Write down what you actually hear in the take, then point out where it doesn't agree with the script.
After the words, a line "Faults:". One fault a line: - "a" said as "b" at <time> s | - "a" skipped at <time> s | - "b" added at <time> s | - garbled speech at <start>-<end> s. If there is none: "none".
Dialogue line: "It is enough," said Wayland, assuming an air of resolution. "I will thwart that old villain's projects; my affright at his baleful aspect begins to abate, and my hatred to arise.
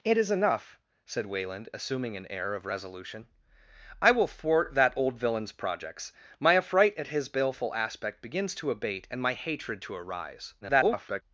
"It is enough," said Wayland, assuming an air of resolution. "I will thwart that old villain's projects; my affright at his baleful aspect begins to abate, and my hatred to arise. [garbled]
Faults:
- garbled speech at 10.6-11.2 s